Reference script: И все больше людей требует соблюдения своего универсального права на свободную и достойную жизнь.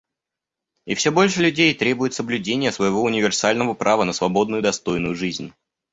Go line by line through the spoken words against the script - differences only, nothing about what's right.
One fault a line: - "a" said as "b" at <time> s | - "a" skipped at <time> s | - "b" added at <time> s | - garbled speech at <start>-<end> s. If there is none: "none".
none